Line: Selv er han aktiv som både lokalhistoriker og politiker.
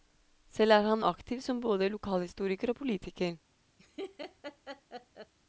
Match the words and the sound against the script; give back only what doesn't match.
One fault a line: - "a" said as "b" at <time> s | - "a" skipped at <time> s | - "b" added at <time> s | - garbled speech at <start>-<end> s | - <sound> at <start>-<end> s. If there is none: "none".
- laugh at 3.8-5.3 s